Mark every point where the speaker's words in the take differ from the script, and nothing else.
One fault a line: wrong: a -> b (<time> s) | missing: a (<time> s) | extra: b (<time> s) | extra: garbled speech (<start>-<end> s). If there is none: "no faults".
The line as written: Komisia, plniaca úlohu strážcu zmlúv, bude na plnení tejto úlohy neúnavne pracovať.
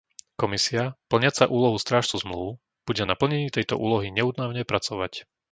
no faults